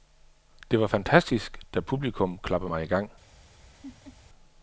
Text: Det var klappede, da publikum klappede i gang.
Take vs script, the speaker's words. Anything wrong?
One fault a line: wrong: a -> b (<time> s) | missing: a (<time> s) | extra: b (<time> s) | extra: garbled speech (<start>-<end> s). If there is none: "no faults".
wrong: klappede -> fantastisk (0.8 s)
extra: mig (2.7 s)